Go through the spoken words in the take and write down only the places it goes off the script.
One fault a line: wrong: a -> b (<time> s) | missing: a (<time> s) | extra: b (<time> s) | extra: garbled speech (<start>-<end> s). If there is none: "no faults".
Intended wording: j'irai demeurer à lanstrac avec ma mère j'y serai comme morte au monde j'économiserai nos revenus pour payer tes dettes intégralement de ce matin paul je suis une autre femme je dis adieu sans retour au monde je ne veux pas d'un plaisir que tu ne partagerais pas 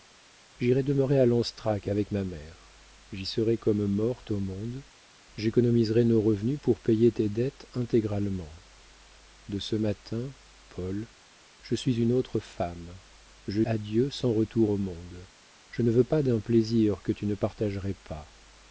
missing: dis (13.6 s)